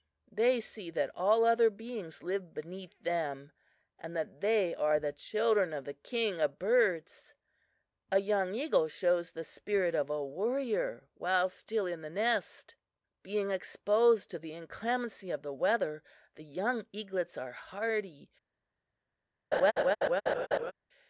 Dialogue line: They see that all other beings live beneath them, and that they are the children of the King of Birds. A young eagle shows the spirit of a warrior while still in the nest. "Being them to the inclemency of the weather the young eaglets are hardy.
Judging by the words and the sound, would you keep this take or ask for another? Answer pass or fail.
fail